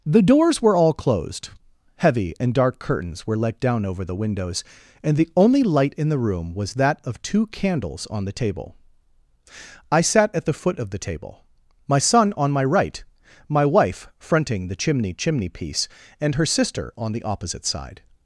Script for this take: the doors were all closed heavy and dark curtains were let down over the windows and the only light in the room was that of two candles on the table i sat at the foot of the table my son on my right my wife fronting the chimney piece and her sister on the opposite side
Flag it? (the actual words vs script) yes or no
yes